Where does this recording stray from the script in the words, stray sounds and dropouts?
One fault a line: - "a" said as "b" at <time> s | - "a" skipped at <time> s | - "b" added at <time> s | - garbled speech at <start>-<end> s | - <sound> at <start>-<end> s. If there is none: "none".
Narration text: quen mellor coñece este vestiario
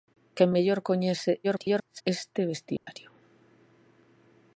- garbled speech at 1.4-2.0 s
- dropout at 2.8-2.9 s